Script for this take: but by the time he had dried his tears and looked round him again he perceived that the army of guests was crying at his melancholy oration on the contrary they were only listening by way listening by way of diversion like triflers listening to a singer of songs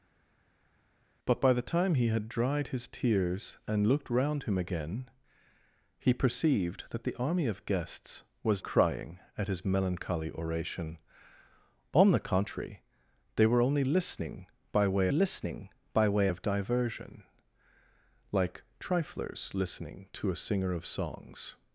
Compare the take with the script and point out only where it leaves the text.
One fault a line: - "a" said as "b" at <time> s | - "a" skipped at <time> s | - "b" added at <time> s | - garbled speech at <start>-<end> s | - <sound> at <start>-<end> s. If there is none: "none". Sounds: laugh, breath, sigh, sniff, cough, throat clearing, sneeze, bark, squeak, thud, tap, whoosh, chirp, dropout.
none